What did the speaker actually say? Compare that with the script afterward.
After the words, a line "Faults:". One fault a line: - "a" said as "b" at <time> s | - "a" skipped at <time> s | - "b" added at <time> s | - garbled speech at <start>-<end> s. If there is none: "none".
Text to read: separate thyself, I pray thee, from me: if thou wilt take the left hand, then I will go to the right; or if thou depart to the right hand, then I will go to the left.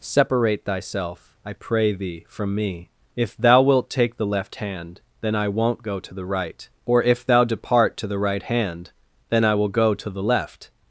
separate thyself, I pray thee, from me: if thou wilt take the left hand, then I won't go to the right; or if thou depart to the right hand, then I will go to the left.
Faults:
- "will" said as "won't" at 5.5 s